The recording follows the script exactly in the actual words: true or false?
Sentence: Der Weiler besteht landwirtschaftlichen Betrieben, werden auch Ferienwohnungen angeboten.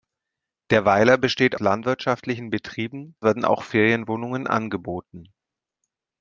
true